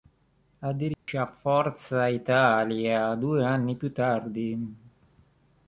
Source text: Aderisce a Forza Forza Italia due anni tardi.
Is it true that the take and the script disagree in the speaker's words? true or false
true